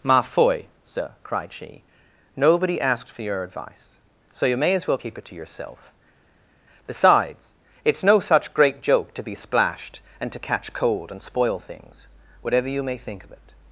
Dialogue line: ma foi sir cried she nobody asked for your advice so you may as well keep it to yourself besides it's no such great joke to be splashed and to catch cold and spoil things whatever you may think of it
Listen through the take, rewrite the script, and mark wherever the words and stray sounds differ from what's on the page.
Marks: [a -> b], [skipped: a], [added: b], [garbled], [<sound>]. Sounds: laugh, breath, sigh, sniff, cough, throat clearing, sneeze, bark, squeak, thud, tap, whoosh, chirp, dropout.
ma foi sir cried she nobody asked for your advice so you may as well keep it to yourself besides it's no such great joke to be splashed and to catch cold and spoil things whatever you may think of it